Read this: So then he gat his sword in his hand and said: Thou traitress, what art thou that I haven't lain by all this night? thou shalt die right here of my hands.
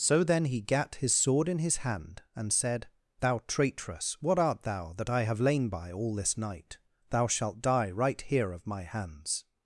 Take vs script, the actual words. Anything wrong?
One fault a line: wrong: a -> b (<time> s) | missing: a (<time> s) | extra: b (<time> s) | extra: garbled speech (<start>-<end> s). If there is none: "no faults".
wrong: haven't -> have (5.2 s)